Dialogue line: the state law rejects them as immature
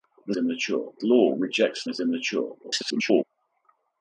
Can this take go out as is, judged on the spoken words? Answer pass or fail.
fail